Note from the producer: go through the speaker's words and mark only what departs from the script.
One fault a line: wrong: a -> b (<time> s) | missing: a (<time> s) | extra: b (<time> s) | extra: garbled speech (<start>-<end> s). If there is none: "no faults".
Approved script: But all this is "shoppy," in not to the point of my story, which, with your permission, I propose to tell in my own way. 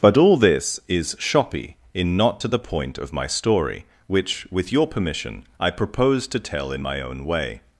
no faults